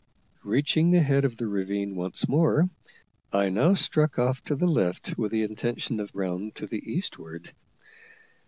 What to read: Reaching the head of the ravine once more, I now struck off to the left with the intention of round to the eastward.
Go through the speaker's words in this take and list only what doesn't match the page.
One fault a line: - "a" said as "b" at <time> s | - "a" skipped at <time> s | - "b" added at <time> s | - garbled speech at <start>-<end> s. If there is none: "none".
none